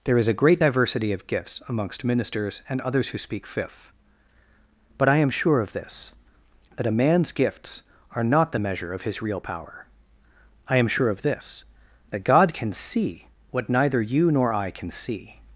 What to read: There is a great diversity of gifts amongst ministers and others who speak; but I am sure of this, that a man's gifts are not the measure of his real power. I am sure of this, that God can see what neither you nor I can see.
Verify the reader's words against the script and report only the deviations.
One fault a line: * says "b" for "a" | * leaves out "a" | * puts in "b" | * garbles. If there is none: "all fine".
* puts in "fifth"